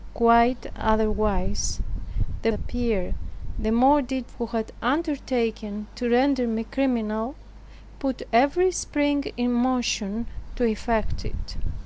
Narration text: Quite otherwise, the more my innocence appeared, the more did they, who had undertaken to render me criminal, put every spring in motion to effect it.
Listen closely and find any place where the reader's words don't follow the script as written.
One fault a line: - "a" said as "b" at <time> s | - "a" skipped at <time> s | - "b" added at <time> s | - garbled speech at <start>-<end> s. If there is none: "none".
- "more my innocence" skipped at 2.5 s
- "they" skipped at 4.3 s